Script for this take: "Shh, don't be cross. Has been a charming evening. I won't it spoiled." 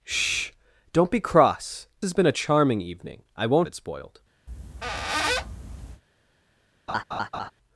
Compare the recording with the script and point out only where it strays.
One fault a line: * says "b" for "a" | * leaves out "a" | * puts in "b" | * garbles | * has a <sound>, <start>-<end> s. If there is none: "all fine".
* has a squeak, 4.5-6.0 s
* has a laugh, 6.9-7.5 s